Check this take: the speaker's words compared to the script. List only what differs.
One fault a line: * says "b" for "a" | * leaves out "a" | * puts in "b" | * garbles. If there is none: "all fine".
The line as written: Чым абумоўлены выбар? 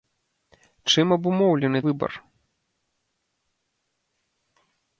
all fine